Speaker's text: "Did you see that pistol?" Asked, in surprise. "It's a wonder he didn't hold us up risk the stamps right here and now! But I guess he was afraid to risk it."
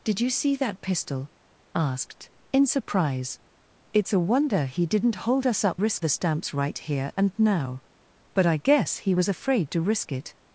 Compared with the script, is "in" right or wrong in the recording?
right